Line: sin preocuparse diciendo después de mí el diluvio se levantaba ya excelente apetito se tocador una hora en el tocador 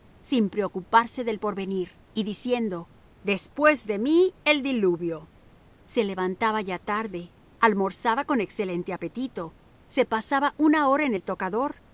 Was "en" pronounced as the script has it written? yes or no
yes